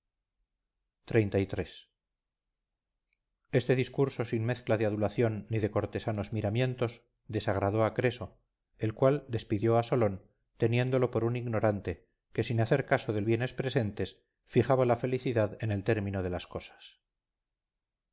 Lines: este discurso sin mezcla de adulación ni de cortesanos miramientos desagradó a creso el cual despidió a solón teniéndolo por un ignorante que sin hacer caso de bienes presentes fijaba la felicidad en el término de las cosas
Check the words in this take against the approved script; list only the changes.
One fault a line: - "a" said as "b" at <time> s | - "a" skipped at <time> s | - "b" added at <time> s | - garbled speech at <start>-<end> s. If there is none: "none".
none